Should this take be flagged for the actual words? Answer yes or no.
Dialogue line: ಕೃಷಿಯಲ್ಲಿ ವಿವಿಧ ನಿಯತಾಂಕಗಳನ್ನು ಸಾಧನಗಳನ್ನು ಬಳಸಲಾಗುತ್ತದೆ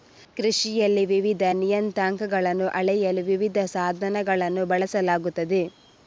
yes